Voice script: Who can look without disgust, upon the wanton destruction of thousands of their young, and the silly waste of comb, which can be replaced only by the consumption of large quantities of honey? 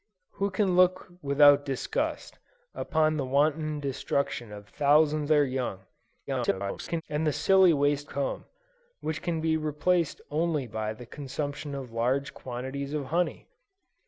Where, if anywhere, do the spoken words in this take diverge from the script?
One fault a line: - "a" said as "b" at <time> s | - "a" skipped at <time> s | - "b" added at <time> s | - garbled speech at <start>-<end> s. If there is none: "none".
- "of" skipped at 5.3 s
- garbled speech at 6.3-7.0 s
- "of" skipped at 8.1 s